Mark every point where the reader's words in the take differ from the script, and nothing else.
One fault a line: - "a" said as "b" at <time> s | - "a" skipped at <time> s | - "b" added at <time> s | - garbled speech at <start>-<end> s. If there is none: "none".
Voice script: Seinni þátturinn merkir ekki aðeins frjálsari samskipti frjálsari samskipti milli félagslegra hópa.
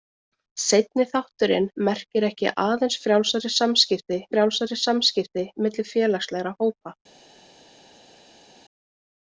none